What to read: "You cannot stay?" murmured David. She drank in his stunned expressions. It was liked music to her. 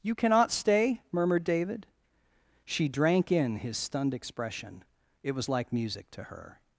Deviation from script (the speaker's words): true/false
true